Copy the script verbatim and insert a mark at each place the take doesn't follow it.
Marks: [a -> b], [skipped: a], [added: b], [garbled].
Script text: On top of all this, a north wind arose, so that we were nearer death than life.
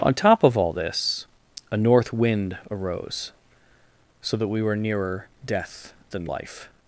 On top of all this, a north wind arose, so that we were nearer death than life.